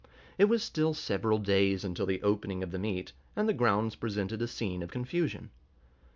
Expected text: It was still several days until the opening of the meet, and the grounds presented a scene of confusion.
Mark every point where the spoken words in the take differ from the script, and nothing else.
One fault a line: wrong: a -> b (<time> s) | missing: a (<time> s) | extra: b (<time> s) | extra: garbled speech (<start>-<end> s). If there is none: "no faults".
no faults